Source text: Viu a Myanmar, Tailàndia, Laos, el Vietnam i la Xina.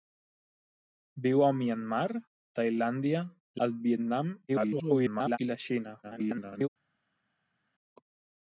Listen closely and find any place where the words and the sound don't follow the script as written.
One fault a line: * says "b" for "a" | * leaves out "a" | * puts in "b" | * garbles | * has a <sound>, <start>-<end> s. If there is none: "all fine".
* leaves out "Laos"
* garbles
* garbles